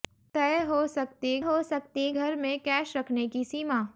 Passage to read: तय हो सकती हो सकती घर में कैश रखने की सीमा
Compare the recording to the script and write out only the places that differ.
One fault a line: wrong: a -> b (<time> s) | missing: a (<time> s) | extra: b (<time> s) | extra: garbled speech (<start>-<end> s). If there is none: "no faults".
no faults